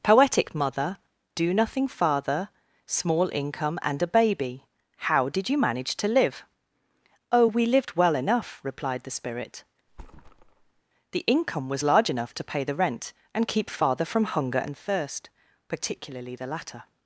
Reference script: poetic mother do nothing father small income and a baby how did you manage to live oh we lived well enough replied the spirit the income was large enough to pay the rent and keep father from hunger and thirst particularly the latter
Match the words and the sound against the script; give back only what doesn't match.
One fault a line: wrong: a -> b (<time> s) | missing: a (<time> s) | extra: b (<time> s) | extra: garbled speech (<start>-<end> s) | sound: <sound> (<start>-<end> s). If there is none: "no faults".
sound: thud (9.9-10.8 s)